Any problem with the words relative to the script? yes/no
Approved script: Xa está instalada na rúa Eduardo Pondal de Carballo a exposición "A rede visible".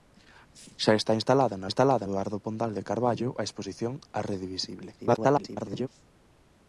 yes